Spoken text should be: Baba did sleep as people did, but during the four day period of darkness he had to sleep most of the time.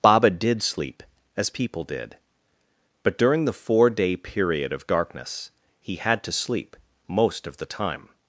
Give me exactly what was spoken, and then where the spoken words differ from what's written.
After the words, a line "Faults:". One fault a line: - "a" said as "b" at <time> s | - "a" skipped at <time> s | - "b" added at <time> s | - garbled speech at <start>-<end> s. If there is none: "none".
Baba did sleep as people did, but during the four day period of darkness he had to sleep most of the time.
Faults:
none